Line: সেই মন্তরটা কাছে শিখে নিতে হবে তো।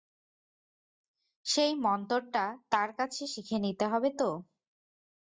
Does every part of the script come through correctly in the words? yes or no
no